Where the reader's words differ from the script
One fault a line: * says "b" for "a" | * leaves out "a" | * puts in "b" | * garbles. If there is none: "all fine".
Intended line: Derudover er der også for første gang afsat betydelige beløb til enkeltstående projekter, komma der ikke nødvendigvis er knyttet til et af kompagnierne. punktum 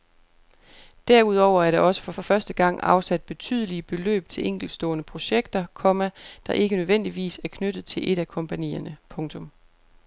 * puts in "for"